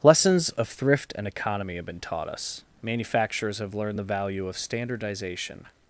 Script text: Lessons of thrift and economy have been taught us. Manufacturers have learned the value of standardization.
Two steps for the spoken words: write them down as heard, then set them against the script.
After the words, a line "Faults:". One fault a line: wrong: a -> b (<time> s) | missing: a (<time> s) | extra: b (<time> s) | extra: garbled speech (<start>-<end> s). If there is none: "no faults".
Lessons of thrift and economy have been taught us. Manufacturers have learned the value of standardization.
Faults:
no faults